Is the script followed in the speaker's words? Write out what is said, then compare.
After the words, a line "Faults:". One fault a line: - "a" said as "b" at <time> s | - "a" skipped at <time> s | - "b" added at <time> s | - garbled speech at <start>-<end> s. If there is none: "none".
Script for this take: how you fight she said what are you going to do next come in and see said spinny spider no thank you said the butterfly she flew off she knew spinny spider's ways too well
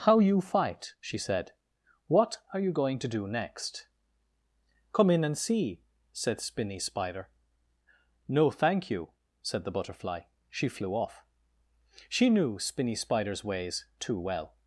how you fight she said what are you going to do next come in and see said spinny spider no thank you said the butterfly she flew off she knew spinny spider's ways too well
Faults:
none